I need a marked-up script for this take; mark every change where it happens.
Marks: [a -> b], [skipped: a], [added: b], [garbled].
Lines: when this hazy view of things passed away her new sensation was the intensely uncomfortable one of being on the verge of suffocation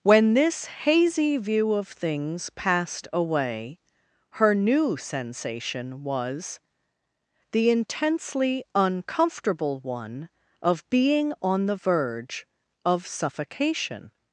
when this hazy view of things passed away her new sensation was the intensely uncomfortable one of being on the verge of suffocation